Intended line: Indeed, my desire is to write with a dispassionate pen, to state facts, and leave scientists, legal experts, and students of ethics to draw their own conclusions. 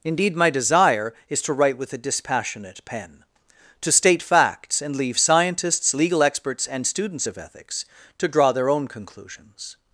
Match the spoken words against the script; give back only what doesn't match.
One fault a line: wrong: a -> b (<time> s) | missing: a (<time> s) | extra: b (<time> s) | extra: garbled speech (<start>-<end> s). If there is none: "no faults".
no faults